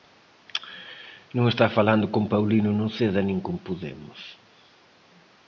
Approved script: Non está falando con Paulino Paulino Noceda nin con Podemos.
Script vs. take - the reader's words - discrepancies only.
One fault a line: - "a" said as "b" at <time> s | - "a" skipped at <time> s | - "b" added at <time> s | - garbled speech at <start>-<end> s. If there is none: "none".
- "Paulino" skipped at 2.7 s